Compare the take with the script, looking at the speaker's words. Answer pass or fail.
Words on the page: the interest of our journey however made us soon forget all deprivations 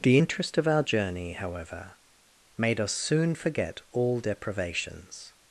pass